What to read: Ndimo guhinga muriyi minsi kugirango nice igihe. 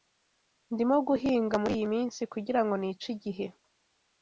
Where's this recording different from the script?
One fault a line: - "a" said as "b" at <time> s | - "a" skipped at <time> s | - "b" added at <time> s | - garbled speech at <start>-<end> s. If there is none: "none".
none